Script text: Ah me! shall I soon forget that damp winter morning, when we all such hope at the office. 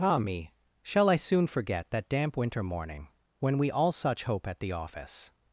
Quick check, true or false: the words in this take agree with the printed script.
true